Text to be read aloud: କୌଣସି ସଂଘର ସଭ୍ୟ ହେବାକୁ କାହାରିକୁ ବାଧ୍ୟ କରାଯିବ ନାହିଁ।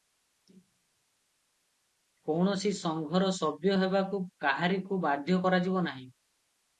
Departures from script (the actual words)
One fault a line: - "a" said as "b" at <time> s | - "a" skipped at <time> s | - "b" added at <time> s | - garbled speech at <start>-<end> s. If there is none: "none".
none